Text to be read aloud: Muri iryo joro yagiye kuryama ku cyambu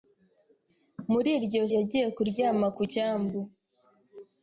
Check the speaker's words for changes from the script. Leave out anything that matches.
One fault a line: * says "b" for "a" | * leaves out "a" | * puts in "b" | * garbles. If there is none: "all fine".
* leaves out "joro"